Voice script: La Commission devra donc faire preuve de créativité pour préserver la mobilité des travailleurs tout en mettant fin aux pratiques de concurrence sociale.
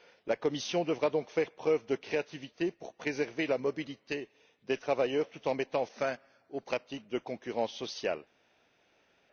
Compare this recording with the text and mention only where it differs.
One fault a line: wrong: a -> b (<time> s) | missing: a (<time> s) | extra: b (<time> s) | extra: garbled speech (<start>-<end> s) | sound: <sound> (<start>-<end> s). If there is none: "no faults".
no faults